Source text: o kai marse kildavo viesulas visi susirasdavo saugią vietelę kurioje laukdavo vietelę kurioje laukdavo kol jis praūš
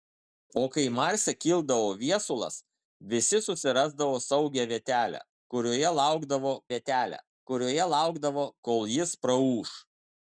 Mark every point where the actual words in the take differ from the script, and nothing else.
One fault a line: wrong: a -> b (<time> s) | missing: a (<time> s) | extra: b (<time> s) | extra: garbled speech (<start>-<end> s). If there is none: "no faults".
no faults